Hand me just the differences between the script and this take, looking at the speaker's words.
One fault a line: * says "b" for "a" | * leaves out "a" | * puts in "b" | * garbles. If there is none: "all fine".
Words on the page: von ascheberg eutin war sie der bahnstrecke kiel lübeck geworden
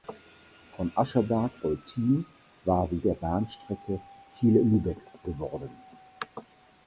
all fine